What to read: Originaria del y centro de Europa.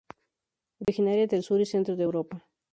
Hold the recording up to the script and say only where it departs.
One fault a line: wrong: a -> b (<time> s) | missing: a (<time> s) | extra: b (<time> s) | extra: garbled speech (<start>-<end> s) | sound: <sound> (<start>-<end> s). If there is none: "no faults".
sound: dropout (0.8-0.9 s)
extra: sur (1.4 s)